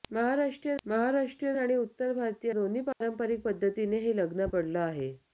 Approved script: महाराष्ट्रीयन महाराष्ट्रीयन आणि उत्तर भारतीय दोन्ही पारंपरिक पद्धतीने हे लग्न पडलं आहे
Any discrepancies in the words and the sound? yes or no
yes